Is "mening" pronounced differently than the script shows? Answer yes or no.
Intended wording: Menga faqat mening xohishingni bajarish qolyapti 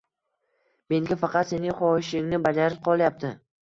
yes